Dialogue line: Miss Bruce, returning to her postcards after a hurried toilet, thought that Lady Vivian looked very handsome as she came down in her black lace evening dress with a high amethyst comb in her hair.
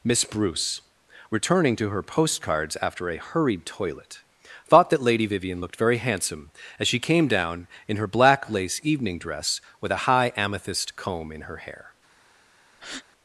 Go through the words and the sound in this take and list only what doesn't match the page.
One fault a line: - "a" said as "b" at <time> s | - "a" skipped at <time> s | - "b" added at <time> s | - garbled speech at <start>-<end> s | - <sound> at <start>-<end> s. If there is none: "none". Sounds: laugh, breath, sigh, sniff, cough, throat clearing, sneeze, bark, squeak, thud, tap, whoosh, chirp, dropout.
- breath at 12.7-13.0 s